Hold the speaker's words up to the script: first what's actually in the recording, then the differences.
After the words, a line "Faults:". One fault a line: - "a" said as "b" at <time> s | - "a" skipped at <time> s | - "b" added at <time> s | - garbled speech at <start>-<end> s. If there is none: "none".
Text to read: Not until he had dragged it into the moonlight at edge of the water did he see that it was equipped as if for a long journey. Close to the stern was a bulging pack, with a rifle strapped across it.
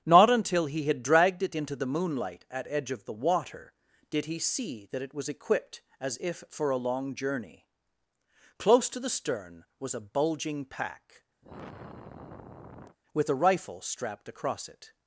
Not until he had dragged it into the moonlight at edge of the water did he see that it was equipped as if for a long journey. Close to the stern was a bulging pack, with a rifle strapped across it.
Faults:
none